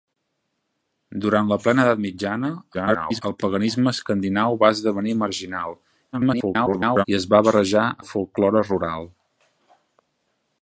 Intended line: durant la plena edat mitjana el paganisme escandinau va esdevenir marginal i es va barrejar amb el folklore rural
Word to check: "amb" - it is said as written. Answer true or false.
false